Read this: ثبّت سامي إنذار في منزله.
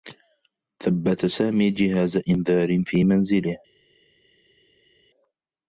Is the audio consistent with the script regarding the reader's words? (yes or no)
no